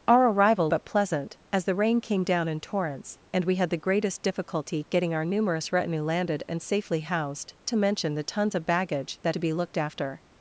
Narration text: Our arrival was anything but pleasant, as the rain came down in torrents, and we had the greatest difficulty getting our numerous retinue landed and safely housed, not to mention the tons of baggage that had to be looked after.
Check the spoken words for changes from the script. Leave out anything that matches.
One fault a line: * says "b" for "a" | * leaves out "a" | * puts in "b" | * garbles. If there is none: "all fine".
* leaves out "was anything"
* leaves out "not"
* leaves out "had"